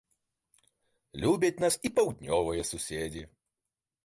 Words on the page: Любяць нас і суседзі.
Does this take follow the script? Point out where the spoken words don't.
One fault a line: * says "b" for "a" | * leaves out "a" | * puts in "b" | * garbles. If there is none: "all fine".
* puts in "паўднёвыя"